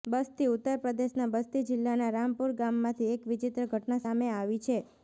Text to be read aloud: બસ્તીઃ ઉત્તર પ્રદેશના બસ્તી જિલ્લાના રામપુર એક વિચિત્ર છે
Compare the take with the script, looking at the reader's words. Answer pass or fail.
fail